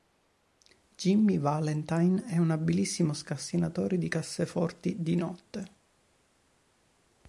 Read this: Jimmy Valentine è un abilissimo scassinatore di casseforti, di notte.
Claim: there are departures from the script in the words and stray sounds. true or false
false